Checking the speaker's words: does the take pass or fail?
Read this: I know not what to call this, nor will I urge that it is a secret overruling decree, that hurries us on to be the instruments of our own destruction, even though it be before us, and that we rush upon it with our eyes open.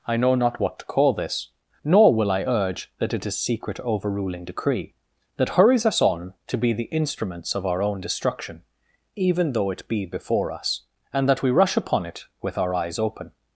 fail